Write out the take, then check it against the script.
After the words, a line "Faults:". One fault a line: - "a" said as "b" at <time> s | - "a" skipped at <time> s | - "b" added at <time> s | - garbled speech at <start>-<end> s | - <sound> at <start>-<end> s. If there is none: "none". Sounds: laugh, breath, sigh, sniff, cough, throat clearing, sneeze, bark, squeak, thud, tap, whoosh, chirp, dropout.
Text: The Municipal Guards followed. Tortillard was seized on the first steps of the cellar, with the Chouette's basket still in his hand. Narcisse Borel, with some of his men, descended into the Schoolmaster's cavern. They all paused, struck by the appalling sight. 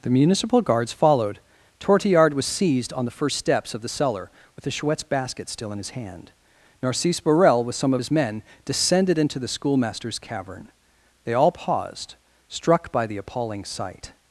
The Municipal Guards followed. Tortillard was seized on the first steps of the cellar, with the Chouette's basket still in his hand. Narcisse Borel, with some of his men, descended into the Schoolmaster's cavern. They all paused, struck by the appalling sight.
Faults:
none